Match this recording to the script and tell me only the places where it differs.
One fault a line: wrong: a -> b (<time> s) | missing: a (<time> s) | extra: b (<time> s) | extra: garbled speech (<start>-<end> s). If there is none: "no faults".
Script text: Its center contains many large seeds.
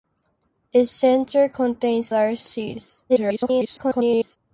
missing: many (2.1 s)
extra: garbled speech (3.1-4.4 s)